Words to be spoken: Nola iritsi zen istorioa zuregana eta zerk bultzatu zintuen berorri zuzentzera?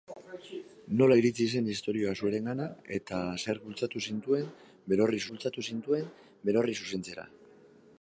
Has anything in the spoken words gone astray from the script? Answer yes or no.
yes